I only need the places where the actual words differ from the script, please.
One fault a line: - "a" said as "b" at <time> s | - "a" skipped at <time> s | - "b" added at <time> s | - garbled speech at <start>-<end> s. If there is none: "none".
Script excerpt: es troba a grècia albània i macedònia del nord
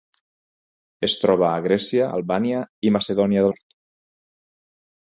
- "del" skipped at 3.5 s